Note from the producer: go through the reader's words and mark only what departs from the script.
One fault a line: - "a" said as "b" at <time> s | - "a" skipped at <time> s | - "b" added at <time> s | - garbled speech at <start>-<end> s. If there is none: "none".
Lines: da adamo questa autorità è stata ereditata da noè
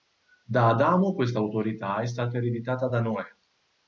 none